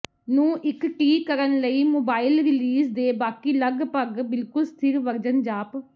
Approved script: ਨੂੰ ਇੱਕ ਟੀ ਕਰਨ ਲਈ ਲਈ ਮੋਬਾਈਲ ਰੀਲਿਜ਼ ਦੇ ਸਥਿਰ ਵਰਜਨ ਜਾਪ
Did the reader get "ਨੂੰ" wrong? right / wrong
right